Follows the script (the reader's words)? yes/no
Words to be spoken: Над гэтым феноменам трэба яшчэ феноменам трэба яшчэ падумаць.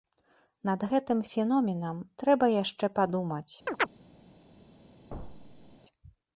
no